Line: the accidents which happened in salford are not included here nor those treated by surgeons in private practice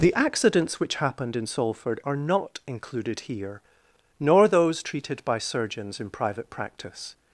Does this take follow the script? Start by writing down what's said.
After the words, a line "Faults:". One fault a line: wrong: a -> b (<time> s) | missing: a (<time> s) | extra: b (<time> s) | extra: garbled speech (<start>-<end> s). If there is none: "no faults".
the accidents which happened in salford are not included here nor those treated by surgeons in private practice
Faults:
no faults